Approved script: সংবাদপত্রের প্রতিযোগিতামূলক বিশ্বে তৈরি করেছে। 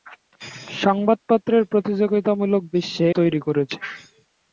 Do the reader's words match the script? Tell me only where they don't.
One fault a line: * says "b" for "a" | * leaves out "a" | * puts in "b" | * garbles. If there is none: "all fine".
all fine